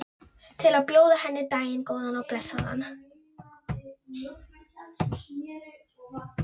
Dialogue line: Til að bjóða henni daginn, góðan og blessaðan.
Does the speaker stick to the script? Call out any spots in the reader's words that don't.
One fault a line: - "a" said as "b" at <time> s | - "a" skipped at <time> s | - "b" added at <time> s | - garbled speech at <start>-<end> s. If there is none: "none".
none